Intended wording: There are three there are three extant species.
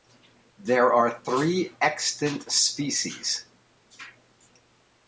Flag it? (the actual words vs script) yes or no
yes